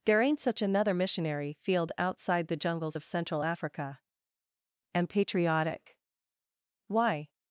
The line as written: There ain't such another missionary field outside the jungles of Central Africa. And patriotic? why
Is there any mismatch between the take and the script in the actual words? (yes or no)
no